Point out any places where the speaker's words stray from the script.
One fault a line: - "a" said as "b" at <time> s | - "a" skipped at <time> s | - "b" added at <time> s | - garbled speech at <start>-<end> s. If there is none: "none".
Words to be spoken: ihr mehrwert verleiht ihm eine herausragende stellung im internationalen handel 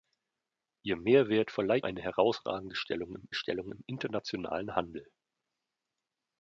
- "ihm" skipped at 1.9 s
- "stellung im" added at 3.3 s